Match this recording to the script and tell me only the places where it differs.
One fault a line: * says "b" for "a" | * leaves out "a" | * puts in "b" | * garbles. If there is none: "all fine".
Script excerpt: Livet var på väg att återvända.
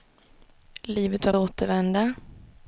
* leaves out "på väg att"